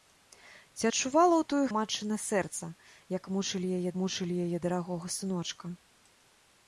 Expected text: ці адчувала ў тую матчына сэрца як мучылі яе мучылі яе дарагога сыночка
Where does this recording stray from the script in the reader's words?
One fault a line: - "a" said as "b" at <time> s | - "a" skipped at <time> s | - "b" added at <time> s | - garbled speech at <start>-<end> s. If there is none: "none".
none